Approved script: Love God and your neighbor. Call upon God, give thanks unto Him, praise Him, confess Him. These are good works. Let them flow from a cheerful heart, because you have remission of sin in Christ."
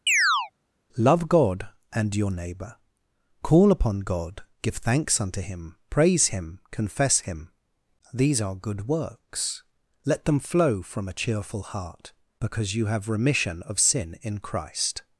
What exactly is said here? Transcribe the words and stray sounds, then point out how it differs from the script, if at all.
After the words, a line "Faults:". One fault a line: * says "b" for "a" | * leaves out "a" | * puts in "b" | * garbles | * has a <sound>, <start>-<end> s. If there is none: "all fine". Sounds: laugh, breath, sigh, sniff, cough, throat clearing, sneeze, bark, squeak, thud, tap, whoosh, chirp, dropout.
Love God and your neighbor. Call upon God, give thanks unto Him, praise Him, confess Him. These are good works. Let them flow from a cheerful heart, because you have remission of sin in Christ."
Faults:
* has a chirp, 0.1-0.5 s